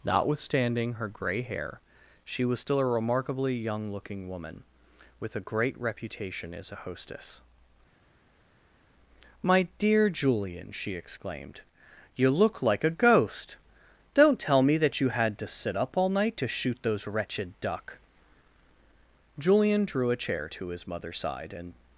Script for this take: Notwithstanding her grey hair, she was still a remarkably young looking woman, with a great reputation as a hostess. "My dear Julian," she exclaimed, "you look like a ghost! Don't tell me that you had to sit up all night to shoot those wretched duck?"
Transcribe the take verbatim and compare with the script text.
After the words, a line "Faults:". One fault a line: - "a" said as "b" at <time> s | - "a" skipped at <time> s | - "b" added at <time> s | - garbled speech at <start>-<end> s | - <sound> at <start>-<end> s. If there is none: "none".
Notwithstanding her grey hair, she was still a remarkably young looking woman, with a great reputation as a hostess. "My dear Julian," she exclaimed, "you look like a ghost! Don't tell me that you had to sit up all night to shoot those wretched duck?" Julian drew a chair to his mother's side and
Faults:
- "Julian drew a chair to his mother's side and" added at 19.4 s